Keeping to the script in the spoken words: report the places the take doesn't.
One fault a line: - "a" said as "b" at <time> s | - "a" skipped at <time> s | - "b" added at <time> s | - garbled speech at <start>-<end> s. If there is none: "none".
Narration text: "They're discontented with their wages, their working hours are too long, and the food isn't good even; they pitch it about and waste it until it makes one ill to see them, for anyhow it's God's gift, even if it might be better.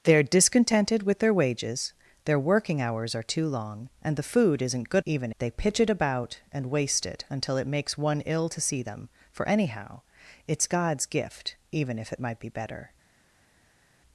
none